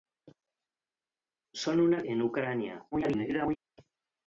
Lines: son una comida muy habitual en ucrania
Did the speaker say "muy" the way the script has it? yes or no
no